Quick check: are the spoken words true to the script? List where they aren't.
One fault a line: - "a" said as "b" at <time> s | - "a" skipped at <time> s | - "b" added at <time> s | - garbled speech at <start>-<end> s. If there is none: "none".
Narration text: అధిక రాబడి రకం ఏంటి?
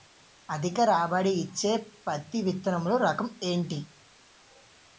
- "ఇచ్చే పత్తి విత్తనములు" added at 1.3 s